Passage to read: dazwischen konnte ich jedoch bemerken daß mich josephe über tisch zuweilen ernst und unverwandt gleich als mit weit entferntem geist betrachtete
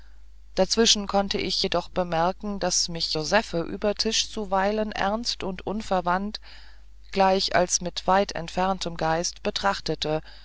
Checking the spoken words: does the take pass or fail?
pass